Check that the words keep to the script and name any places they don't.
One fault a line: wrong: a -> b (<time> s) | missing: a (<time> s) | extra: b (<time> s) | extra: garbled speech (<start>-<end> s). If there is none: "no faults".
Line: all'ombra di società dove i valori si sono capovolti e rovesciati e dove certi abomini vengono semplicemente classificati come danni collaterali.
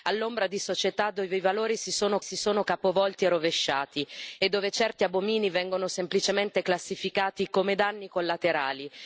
extra: si sono (2.2 s)